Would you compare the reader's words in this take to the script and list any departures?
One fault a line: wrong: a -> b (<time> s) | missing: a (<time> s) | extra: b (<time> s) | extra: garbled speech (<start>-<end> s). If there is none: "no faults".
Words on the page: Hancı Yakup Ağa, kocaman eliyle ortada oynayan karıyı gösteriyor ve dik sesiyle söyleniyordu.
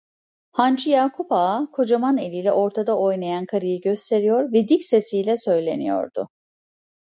no faults